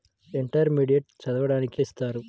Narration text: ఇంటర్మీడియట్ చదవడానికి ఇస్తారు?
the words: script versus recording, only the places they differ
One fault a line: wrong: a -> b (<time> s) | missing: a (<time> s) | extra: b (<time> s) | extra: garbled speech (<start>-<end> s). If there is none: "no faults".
no faults